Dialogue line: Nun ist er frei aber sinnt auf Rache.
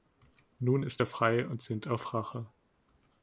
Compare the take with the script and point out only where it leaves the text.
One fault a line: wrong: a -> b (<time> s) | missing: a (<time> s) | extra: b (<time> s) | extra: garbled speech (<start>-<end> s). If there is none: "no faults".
wrong: aber -> und (1.5 s)